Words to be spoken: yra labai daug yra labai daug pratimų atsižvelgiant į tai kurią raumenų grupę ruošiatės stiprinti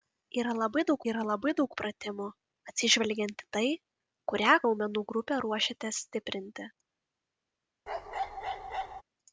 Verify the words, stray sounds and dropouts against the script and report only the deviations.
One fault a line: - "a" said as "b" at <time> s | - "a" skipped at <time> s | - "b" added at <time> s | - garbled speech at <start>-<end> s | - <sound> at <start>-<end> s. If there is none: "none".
- bark at 7.9-9.0 s